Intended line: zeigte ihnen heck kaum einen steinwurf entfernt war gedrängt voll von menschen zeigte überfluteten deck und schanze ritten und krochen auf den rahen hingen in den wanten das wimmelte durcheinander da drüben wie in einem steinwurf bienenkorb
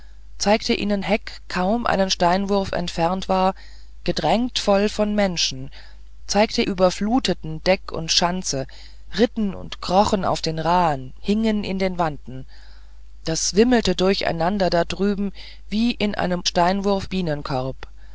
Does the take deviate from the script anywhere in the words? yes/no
no